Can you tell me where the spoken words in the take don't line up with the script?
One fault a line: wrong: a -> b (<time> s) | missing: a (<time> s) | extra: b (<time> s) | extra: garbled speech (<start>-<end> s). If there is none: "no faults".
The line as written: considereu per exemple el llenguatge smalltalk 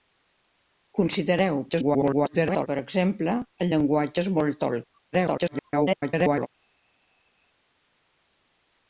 extra: garbled speech (1.7-2.7 s)
extra: garbled speech (5.1-6.5 s)